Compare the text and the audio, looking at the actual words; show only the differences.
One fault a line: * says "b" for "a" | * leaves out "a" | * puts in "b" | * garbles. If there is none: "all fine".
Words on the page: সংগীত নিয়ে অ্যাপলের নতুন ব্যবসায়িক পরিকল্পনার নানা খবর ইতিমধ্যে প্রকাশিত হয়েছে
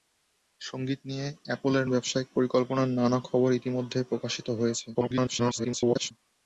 * leaves out "নতুন"
* garbles